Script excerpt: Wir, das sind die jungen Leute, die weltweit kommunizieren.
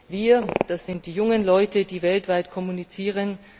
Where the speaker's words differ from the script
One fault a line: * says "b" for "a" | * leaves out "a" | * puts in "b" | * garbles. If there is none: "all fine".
all fine